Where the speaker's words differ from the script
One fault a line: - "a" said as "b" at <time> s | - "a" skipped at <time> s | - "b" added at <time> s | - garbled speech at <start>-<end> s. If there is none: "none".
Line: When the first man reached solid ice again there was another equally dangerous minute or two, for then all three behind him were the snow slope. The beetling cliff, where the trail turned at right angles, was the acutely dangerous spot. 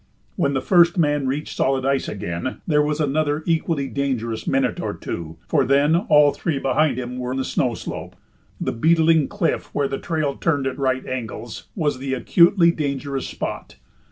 none